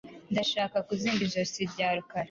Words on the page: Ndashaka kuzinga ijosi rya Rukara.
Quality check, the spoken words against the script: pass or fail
pass